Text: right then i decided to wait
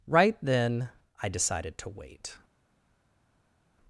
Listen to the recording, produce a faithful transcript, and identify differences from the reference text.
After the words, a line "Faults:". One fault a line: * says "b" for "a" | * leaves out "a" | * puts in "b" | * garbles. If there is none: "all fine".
right then i decided to wait
Faults:
all fine